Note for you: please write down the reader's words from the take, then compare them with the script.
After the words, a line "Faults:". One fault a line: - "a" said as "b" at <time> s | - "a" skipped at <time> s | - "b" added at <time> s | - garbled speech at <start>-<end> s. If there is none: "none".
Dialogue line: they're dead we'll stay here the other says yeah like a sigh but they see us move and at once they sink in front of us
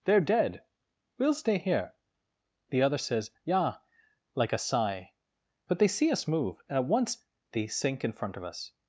they're dead we'll stay here the other says yeah like a sigh but they see us move and at once they sink in front of us
Faults:
none